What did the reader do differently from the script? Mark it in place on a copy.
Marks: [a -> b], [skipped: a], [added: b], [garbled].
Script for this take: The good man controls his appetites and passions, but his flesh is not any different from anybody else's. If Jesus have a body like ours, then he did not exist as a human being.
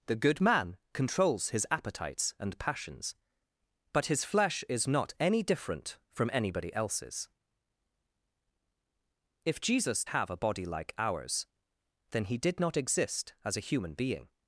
The good man controls his appetites and passions, but his flesh is not any different from anybody else's. If Jesus have a body like ours, then he did not exist as a human being.